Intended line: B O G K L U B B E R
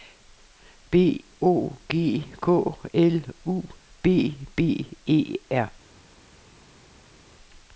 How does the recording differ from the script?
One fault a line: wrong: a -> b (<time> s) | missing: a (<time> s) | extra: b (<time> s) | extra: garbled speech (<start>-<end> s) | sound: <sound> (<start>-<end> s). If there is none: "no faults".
no faults